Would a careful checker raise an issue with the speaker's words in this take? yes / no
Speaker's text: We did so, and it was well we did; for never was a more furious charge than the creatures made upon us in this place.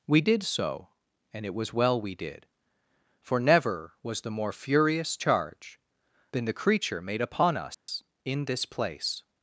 yes